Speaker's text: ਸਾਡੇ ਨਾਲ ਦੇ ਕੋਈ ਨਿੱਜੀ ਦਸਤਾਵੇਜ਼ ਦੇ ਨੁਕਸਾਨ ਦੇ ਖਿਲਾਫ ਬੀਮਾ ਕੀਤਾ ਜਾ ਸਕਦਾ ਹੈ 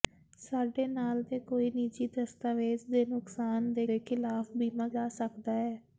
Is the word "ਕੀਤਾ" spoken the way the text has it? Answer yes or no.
no